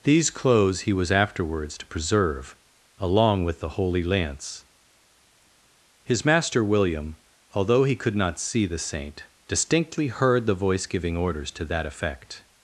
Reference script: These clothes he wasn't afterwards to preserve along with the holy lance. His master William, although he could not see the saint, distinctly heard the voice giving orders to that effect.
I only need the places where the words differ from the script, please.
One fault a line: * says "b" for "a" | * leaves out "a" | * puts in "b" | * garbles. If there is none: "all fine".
* says "was" for "wasn't"